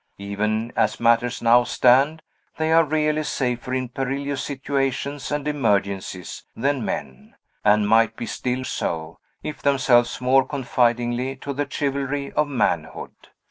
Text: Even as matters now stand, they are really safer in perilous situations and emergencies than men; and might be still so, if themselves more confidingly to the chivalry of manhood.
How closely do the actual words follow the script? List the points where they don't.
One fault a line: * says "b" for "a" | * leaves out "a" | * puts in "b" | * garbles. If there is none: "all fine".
all fine